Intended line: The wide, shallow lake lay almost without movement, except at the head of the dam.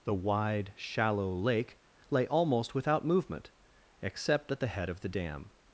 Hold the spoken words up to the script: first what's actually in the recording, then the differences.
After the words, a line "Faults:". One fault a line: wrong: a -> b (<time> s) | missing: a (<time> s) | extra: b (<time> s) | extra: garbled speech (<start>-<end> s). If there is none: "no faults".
The wide, shallow lake lay almost without movement, except at the head of the dam.
Faults:
no faults